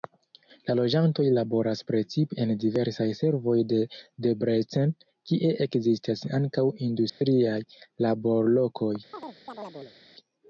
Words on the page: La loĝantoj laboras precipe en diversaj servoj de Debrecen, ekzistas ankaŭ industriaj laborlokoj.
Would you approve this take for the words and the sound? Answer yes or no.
no